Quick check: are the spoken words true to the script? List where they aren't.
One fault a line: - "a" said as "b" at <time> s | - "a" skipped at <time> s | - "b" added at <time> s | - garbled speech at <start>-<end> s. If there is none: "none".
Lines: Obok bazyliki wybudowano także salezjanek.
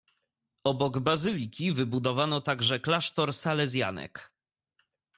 - "klasztor" added at 2.8 s